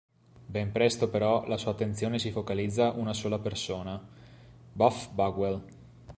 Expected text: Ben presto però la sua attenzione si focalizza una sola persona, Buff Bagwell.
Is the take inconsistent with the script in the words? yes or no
no